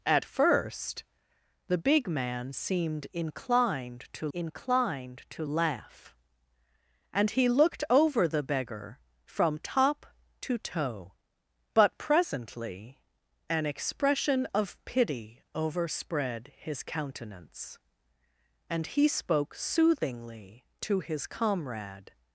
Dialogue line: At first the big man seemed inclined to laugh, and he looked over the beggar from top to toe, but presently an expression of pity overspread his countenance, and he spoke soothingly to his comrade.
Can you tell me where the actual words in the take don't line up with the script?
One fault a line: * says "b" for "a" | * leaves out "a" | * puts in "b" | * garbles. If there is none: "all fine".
* puts in "inclined to"